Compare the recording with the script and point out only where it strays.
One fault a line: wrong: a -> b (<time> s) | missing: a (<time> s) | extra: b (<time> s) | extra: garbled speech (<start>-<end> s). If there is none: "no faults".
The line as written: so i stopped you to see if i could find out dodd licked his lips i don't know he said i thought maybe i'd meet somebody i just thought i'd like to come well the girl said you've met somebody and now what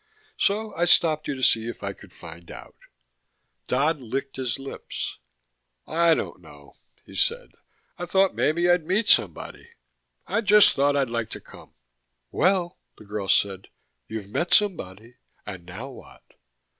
no faults